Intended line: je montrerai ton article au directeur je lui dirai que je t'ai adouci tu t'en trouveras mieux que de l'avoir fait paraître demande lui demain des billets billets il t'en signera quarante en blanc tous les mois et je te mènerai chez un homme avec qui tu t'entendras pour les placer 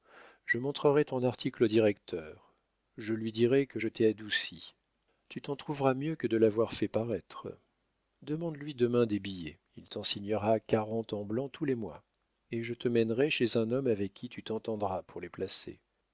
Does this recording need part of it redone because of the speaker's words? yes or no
yes